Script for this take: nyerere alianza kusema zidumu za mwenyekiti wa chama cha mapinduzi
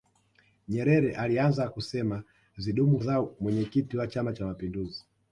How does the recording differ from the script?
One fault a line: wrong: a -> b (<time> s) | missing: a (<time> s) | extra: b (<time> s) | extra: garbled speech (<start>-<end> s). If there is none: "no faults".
no faults